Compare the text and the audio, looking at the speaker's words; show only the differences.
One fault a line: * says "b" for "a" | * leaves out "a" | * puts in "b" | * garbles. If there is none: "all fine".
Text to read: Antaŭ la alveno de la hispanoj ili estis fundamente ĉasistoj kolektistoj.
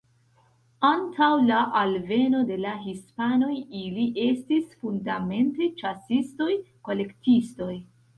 all fine